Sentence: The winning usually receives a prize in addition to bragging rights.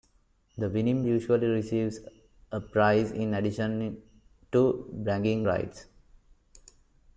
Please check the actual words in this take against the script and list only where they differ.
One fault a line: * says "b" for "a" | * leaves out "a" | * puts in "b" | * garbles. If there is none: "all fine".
all fine